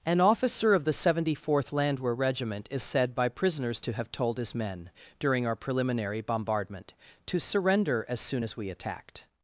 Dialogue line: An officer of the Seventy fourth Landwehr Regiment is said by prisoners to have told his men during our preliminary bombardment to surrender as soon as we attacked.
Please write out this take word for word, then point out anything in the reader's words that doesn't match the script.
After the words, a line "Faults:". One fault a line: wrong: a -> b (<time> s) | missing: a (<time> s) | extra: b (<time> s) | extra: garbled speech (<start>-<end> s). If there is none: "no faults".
An officer of the Seventy fourth Landwehr Regiment is said by prisoners to have told his men during our preliminary bombardment to surrender as soon as we attacked.
Faults:
no faults